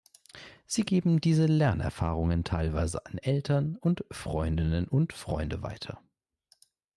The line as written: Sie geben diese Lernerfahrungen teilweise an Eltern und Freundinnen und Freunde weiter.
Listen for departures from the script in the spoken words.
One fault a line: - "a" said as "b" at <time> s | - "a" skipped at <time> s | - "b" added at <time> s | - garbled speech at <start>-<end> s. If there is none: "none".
none